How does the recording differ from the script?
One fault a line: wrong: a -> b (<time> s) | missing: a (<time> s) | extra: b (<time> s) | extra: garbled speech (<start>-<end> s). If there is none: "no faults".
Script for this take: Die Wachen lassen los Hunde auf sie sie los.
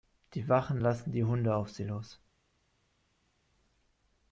wrong: los -> die (1.1 s)
missing: sie (1.8 s)